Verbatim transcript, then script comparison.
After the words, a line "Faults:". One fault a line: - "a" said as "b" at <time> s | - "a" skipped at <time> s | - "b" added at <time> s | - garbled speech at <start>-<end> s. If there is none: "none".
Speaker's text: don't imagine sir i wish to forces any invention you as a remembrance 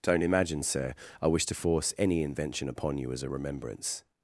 don't imagine sir i wish to force any invention upon you as a remembrance
Faults:
- "forces" said as "force" at 1.5 s
- "upon" added at 2.7 s